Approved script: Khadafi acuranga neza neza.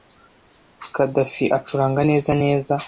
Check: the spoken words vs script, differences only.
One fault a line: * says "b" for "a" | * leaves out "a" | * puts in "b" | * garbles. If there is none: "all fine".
all fine